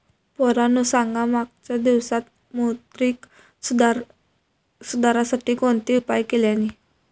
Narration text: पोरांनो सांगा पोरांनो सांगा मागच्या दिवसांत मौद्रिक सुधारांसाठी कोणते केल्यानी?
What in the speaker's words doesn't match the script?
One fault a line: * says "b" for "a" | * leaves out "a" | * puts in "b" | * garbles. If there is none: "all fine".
* leaves out "पोरांनो सांगा"
* puts in "उपाय"